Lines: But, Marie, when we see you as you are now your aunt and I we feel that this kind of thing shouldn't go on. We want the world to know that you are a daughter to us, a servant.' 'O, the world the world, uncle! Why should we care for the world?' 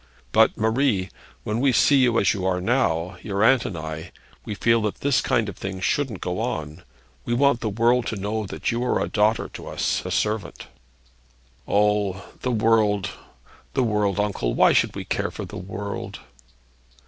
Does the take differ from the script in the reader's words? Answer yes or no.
no